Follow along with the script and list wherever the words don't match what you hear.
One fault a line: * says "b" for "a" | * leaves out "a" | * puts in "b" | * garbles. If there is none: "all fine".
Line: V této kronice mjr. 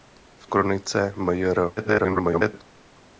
* leaves out "této"
* garbles